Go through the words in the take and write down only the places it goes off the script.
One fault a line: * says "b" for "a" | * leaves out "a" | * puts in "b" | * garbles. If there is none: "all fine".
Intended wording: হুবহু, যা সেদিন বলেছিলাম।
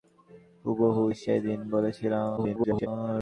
* leaves out "যা"
* garbles